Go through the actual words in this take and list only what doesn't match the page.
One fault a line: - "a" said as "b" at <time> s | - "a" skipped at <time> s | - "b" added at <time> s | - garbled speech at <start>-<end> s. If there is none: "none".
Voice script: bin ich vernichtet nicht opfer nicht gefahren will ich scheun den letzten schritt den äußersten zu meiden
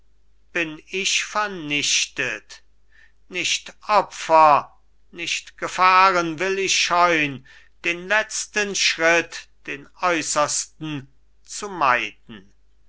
none